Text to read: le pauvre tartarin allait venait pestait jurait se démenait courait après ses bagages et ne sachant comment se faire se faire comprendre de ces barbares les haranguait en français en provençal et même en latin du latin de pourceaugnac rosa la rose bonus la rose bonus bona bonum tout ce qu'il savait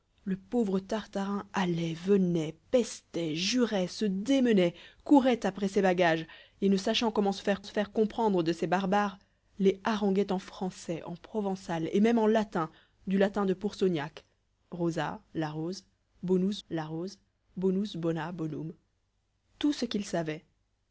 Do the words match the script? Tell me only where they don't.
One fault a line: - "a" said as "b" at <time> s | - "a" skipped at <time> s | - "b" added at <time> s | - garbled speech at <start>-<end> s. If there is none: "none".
none